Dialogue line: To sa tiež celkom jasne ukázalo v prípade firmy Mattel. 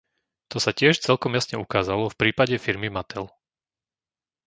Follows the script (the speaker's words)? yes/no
yes